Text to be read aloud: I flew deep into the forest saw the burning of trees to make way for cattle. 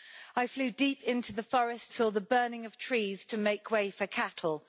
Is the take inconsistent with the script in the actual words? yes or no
no